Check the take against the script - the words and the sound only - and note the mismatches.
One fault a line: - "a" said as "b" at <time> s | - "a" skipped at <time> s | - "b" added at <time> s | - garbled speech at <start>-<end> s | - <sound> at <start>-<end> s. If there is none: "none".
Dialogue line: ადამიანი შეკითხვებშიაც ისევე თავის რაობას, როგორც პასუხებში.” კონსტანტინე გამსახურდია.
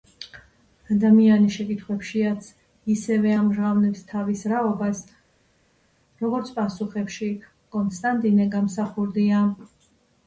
- "ამჟღავნებს" added at 3.4 s